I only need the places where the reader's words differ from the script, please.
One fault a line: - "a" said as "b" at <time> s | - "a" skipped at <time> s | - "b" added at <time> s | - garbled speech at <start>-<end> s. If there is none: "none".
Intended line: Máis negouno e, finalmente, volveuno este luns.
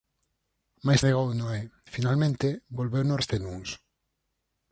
none